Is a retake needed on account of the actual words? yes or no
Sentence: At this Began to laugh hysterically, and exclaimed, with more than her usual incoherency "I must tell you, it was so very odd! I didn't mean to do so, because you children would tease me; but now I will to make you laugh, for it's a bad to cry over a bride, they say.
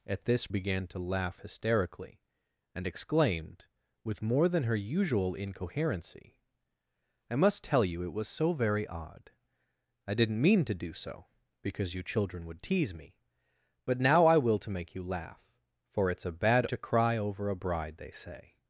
no